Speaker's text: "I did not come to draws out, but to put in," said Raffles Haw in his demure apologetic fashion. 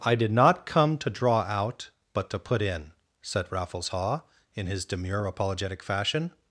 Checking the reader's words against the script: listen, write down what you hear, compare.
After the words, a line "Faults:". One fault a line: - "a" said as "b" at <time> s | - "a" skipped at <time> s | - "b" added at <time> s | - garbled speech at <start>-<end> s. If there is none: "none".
"I did not come to draw out, but to put in," said Raffles Haw in his demure apologetic fashion.
Faults:
- "draws" said as "draw" at 1.1 s